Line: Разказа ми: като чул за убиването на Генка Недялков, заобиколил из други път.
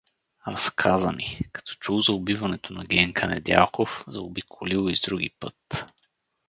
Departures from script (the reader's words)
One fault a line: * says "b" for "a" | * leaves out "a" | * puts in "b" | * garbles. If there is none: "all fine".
all fine